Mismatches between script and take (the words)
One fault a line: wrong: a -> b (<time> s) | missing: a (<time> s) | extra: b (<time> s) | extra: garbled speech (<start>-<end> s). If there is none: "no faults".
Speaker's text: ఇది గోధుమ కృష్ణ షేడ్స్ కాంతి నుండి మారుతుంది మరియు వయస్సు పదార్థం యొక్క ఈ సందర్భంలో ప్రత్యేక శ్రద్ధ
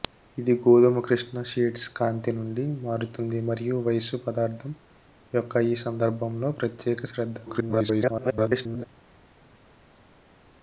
extra: garbled speech (7.5-8.9 s)